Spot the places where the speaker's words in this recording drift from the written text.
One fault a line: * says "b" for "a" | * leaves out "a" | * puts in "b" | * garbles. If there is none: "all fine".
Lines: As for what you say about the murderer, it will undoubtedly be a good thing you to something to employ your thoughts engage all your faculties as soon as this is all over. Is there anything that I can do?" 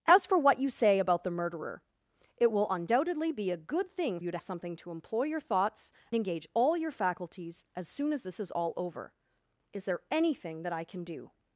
all fine